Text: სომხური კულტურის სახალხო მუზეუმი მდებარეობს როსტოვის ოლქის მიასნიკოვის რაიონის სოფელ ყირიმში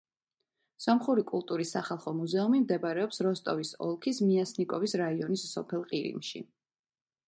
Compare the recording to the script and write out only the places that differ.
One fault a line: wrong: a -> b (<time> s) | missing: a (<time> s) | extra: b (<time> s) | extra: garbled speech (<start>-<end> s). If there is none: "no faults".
no faults